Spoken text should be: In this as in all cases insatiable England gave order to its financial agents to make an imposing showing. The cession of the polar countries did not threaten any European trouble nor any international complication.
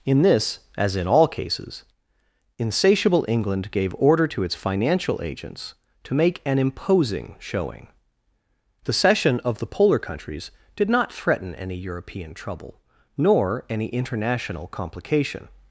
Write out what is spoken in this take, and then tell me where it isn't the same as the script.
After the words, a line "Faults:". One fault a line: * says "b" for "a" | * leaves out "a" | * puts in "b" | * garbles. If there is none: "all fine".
In this as in all cases insatiable England gave order to its financial agents to make an imposing showing. The cession of the polar countries did not threaten any European trouble nor any international complication.
Faults:
all fine